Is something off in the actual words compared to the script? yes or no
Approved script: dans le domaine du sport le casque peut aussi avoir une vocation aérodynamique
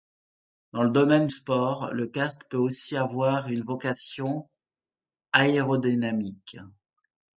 yes